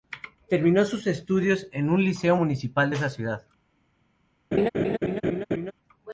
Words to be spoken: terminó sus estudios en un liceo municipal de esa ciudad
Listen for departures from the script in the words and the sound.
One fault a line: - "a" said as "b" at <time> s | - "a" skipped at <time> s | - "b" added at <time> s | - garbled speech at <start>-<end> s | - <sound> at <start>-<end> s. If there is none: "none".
- laugh at 4.5-5.7 s